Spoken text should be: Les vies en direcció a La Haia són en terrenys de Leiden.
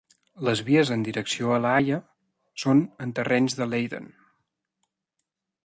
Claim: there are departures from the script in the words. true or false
false